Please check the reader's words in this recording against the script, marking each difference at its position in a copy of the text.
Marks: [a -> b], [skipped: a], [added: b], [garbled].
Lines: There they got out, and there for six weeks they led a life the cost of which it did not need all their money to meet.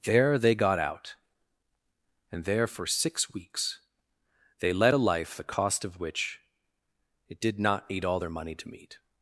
There they got out, and there for six weeks they led a life the cost of which it did not need all their money to meet.